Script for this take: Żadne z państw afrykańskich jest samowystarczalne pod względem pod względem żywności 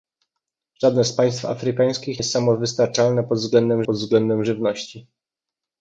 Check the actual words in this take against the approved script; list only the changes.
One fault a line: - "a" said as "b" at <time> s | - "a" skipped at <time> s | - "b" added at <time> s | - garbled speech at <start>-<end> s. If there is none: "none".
none